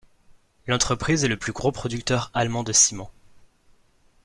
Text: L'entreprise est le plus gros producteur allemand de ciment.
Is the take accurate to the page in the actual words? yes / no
yes